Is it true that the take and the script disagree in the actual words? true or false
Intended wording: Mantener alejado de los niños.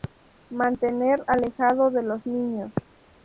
false